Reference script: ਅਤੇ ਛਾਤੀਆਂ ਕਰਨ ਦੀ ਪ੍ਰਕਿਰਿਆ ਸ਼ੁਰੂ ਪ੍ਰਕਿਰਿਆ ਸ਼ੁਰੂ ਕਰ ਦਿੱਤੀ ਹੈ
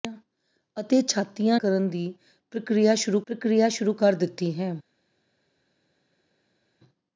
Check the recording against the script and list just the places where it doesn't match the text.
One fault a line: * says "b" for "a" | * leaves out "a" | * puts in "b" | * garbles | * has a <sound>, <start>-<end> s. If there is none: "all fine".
all fine